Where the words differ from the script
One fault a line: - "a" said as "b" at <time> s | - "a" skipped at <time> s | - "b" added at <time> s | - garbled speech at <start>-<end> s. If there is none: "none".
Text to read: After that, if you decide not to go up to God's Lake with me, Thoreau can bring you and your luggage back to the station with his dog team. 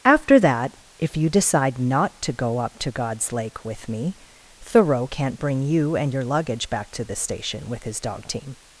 - "can" said as "can't" at 5.0 s